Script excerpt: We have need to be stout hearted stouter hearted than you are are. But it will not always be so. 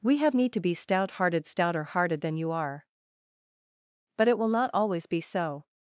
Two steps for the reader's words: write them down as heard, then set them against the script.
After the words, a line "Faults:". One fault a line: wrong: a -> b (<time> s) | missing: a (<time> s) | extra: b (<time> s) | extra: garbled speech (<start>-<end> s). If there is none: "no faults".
We have need to be stout hearted stouter hearted than you are. But it will not always be so.
Faults:
missing: are (2.9 s)